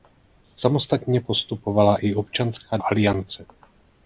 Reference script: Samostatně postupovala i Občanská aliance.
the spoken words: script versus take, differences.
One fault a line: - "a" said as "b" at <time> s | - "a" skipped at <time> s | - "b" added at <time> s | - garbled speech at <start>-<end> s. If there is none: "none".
none